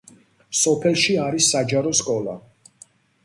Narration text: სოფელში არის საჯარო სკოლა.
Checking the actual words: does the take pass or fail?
pass